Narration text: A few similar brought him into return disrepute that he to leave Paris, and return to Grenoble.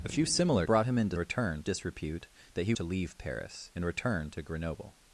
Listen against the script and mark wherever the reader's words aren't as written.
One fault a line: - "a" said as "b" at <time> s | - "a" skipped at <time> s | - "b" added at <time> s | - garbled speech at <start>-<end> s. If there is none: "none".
none